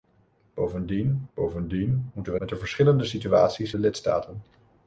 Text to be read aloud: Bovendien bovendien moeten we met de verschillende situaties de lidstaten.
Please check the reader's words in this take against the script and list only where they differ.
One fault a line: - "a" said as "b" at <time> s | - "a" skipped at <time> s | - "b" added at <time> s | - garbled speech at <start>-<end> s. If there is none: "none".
none